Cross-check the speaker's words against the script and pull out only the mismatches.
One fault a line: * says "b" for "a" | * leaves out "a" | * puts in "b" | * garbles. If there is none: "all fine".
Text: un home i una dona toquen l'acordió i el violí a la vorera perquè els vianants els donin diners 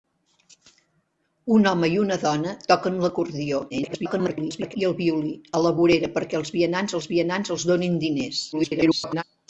* garbles
* puts in "vianants els"
* garbles